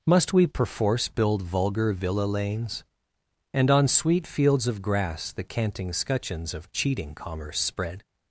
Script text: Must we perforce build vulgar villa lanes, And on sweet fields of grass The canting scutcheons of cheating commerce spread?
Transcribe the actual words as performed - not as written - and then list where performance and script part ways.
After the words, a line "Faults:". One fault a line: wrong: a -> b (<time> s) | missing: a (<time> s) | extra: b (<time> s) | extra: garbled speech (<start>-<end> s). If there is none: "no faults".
Must we perforce build vulgar villa lanes, And on sweet fields of grass The canting scutcheons of cheating commerce spread?
Faults:
no faults